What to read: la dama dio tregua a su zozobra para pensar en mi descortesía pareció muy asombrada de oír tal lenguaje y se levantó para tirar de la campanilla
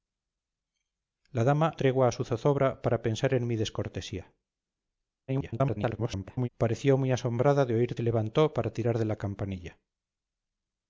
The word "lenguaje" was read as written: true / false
false